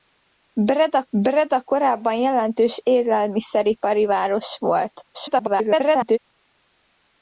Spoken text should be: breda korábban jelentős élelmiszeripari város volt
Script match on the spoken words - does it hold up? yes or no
no